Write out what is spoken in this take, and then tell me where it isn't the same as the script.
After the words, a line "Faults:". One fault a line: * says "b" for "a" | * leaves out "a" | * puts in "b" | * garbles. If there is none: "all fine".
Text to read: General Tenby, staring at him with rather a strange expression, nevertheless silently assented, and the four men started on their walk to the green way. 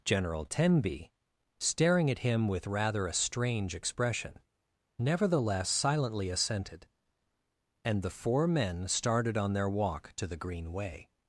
General Tenby, staring at him with rather a strange expression, nevertheless silently assented, and the four men started on their walk to the green way.
Faults:
all fine